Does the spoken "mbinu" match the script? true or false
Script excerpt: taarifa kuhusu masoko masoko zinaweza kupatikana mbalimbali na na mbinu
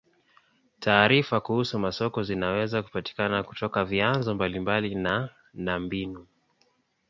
true